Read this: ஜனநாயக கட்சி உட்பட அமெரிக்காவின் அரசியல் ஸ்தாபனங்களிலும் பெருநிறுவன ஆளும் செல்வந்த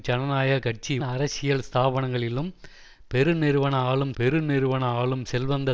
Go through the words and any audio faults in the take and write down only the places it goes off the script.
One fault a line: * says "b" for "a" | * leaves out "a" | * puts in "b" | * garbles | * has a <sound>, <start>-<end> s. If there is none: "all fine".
* says "அரசியல் ஸ்தாபனங்களிலும் பெருநிறுவன ஆளும்" for "உட்பட அமெரிக்காவின் அரசியல் ஸ்தாபனங்களிலும்"